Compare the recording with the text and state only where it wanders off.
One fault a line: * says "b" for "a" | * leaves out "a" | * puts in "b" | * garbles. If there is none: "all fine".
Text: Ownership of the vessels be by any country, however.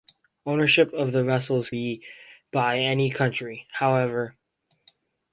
all fine